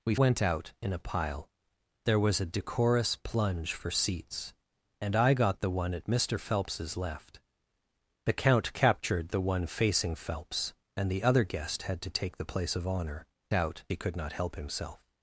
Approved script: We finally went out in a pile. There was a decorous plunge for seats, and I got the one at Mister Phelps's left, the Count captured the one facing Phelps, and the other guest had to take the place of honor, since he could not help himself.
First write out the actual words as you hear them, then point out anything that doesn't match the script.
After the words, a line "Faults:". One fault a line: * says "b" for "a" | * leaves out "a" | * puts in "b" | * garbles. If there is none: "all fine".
We went out in a pile. There was a decorous plunge for seats, and I got the one at Mister Phelps's left, the Count captured the one facing Phelps, and the other guest had to take the place of honor, out he could not help himself.
Faults:
* leaves out "finally"
* says "out" for "since"